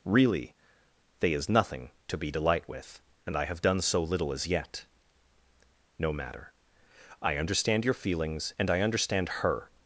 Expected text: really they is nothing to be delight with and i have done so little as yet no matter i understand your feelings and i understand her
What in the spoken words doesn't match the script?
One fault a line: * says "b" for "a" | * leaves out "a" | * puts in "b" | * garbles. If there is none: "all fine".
all fine